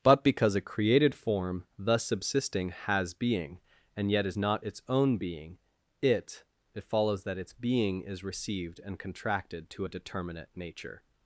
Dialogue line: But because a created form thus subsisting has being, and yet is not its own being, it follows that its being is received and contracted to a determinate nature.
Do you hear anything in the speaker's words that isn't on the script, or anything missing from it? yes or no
yes